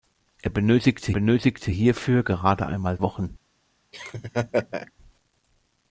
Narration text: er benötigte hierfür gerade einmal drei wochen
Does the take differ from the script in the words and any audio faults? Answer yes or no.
yes